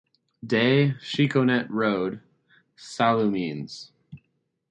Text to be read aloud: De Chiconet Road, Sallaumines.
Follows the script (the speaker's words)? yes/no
yes